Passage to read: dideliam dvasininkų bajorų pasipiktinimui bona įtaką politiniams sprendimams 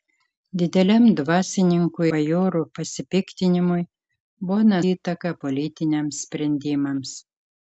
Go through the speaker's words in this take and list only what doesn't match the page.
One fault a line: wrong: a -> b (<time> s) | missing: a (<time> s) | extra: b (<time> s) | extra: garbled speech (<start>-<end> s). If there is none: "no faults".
no faults